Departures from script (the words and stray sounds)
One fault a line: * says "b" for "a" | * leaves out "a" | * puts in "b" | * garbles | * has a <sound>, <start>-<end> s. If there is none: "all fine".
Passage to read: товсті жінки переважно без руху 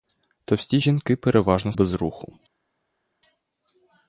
all fine